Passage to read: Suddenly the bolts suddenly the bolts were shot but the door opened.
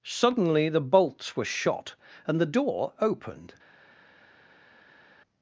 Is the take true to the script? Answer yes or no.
no